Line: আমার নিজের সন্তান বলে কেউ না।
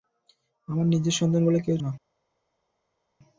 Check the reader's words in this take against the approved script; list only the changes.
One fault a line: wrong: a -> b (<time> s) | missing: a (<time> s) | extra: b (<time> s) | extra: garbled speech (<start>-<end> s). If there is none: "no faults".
no faults